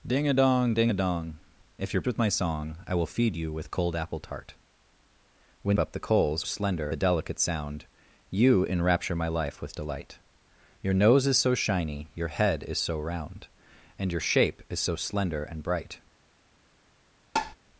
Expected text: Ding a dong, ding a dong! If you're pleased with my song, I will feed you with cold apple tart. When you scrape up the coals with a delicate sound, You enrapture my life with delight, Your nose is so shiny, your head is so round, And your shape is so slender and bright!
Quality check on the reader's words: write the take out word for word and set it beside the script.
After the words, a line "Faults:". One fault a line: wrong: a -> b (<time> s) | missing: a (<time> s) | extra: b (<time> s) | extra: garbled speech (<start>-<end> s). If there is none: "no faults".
Ding a dong, ding a dong! If you're with my song, I will feed you with cold apple tart. When up the coals slender a delicate sound, You enrapture my life with delight, Your nose is so shiny, your head is so round, And your shape is so slender and bright!
Faults:
missing: pleased (2.0 s)
missing: you scrape (5.8 s)
wrong: with -> slender (6.4 s)